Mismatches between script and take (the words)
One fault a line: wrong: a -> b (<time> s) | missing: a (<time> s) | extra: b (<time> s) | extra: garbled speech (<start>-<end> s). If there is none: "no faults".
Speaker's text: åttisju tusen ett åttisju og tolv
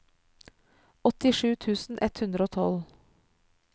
wrong: åttisju -> hundre (2.2 s)